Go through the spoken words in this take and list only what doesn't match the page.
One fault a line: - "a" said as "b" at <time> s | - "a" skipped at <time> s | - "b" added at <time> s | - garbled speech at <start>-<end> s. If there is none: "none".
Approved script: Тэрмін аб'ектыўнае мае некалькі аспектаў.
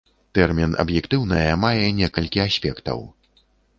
none